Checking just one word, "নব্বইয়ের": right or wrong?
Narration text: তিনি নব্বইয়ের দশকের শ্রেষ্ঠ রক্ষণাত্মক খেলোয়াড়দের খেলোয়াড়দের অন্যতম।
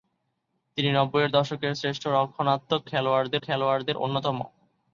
right